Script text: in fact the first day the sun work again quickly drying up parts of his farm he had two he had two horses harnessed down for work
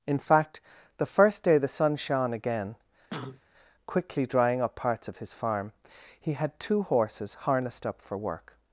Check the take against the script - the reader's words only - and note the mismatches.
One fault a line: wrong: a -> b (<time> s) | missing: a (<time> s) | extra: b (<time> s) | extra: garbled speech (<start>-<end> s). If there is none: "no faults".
wrong: work -> shone (1.9 s)
missing: he had two (6.8 s)
wrong: down -> up (7.9 s)